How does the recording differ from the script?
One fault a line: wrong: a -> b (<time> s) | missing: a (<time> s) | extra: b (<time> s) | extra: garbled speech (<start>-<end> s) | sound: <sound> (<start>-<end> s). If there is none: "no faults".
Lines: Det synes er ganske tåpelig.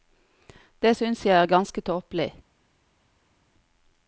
extra: jeg (1.3 s)